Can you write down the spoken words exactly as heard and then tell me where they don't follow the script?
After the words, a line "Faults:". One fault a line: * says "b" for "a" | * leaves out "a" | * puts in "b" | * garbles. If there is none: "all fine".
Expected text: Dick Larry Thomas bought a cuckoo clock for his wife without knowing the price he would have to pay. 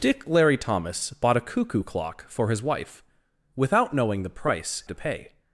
Dick Larry Thomas bought a cuckoo clock for his wife without knowing the price to pay.
Faults:
* leaves out "he would have"